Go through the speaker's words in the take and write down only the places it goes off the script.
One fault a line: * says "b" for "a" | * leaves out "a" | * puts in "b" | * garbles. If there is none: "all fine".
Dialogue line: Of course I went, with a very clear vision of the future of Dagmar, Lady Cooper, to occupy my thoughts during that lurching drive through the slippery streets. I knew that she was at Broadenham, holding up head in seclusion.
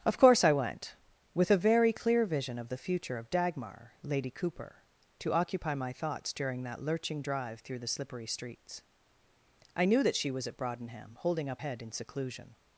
all fine